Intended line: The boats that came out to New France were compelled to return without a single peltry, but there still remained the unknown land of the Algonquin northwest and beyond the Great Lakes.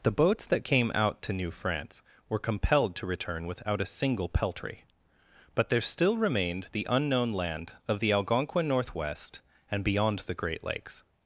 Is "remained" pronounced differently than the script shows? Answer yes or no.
no